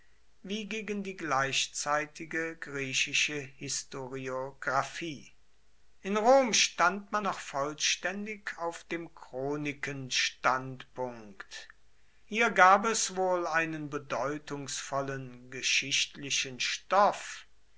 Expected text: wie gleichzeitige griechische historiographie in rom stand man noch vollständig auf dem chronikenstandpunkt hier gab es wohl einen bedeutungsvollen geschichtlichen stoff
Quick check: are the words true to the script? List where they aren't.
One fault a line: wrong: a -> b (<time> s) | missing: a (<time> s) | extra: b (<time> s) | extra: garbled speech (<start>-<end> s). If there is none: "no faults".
extra: gegen die (0.7 s)